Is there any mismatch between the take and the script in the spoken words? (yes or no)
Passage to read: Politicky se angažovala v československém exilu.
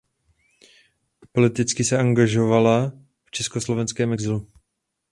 no